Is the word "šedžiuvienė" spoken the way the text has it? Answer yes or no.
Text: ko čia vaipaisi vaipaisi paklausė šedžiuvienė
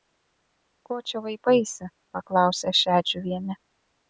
yes